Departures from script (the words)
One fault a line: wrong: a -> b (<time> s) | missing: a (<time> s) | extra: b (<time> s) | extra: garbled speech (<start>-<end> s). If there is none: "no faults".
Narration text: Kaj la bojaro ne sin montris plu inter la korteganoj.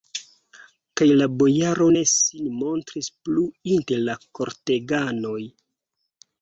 no faults